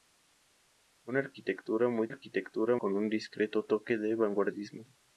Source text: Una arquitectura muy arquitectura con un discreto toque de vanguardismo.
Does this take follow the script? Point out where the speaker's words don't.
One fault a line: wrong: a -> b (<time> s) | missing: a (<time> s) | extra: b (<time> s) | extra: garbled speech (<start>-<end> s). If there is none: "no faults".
no faults